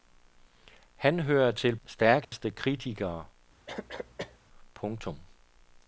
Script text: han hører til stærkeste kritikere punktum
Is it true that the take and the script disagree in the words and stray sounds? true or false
true